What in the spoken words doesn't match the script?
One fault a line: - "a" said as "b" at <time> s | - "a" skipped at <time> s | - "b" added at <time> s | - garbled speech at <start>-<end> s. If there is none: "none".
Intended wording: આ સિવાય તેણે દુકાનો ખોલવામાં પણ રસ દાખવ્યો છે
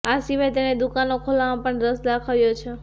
none